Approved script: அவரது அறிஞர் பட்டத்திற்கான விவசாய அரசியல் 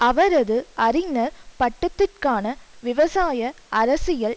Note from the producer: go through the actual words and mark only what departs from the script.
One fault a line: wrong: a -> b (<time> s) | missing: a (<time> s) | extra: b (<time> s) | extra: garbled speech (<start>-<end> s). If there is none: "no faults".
no faults